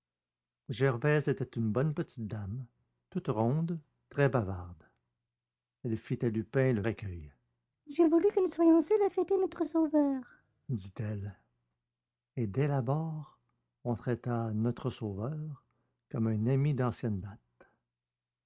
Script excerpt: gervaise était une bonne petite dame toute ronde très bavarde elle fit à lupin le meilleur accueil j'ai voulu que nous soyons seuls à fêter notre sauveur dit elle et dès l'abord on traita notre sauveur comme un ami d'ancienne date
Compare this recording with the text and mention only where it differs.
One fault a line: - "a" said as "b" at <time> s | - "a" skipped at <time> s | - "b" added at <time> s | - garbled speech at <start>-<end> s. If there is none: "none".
- "meilleur" skipped at 6.8 s